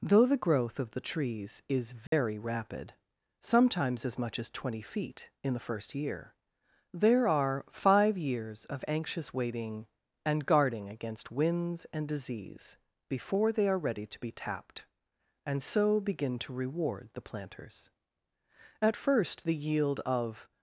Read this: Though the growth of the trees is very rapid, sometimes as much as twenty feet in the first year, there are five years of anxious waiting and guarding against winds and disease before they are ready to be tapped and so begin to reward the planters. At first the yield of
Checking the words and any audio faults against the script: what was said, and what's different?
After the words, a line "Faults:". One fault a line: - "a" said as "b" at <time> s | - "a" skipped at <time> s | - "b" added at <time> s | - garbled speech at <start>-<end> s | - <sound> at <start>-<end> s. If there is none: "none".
Though the growth of the trees is very rapid, sometimes as much as twenty feet in the first year, there are five years of anxious waiting and guarding against winds and disease before they are ready to be tapped and so begin to reward the planters. At first the yield of
Faults:
- dropout at 2.1-2.1 s